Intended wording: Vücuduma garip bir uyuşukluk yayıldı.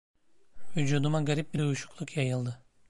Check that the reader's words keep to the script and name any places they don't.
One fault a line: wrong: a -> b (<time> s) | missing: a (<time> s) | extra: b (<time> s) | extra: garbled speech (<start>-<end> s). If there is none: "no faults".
no faults